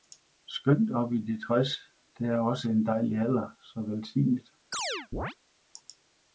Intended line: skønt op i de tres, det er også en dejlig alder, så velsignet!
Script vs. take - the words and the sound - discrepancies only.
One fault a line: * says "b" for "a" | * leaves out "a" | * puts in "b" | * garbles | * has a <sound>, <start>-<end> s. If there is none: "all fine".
* has a chirp, 4.7-5.4 s